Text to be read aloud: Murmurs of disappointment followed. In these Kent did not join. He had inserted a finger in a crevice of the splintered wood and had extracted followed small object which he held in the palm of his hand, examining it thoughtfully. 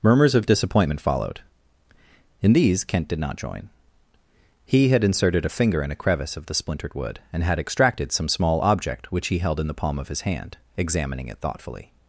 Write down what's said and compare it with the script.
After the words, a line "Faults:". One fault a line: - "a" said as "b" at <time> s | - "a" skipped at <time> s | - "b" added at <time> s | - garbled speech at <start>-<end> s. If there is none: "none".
Murmurs of disappointment followed. In these Kent did not join. He had inserted a finger in a crevice of the splintered wood and had extracted some small object which he held in the palm of his hand, examining it thoughtfully.
Faults:
- "followed" said as "some" at 8.1 s